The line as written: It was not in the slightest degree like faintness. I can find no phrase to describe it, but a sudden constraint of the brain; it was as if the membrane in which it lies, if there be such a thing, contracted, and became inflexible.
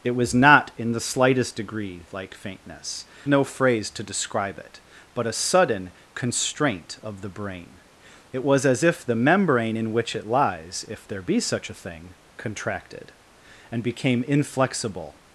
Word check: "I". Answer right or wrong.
wrong